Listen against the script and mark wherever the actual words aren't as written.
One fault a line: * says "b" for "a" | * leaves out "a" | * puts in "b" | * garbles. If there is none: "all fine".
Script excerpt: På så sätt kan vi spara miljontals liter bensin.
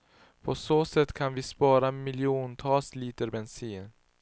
all fine